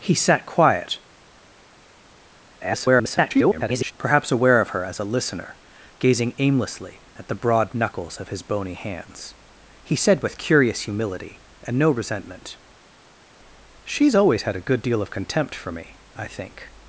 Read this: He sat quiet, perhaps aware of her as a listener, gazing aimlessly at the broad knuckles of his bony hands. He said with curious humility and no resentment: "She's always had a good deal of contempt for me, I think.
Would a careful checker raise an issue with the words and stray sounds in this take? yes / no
yes